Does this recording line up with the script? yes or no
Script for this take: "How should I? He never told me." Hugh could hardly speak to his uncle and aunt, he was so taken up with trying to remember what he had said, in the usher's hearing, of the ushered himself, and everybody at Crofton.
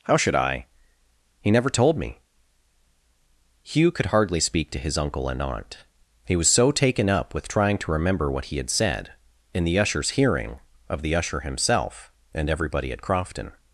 no